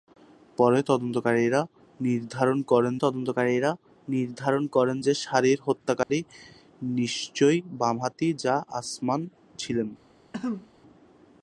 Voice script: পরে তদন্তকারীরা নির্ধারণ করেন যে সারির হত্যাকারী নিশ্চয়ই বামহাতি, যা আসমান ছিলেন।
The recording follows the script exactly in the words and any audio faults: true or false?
false